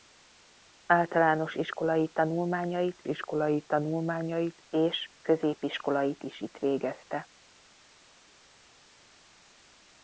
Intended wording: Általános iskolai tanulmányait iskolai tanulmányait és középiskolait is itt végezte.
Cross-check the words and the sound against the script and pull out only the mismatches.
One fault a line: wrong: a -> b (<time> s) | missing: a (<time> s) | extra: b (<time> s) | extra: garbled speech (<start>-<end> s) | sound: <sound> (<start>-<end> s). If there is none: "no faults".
no faults